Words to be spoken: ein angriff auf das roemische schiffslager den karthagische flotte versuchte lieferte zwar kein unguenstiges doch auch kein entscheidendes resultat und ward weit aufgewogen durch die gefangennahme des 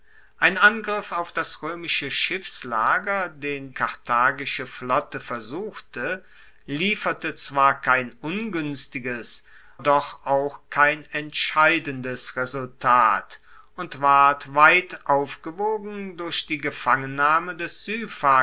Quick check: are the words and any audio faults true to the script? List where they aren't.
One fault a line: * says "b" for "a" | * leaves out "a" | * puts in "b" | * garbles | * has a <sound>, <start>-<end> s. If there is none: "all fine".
all fine